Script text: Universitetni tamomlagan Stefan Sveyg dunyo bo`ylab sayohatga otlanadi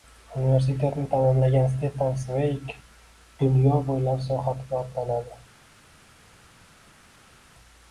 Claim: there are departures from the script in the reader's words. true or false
false